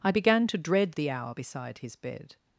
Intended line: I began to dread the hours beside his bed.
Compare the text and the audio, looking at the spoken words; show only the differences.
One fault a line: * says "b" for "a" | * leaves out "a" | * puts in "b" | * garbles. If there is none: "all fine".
* says "hour" for "hours"